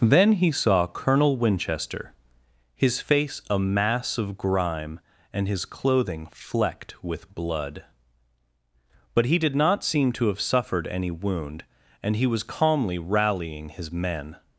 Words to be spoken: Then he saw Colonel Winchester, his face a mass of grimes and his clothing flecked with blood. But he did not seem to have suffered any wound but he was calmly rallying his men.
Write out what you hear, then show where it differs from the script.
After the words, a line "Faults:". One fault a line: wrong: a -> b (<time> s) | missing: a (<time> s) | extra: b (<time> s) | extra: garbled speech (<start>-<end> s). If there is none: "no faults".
Then he saw Colonel Winchester, his face a mass of grime and his clothing flecked with blood. But he did not seem to have suffered any wound and he was calmly rallying his men.
Faults:
wrong: grimes -> grime (4.4 s)
wrong: but -> and (12.0 s)